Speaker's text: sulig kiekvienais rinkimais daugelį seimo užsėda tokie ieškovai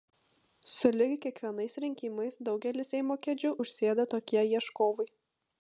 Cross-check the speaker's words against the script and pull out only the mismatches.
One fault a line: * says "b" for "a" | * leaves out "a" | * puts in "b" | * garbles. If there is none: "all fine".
* puts in "kėdžių"